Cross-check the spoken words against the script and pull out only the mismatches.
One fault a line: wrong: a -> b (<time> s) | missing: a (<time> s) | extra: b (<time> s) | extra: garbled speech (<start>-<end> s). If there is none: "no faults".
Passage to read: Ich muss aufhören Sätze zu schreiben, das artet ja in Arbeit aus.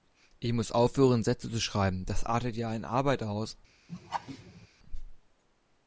no faults